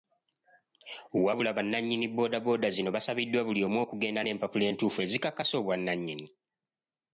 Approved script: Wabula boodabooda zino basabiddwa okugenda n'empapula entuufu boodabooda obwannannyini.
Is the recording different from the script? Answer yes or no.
yes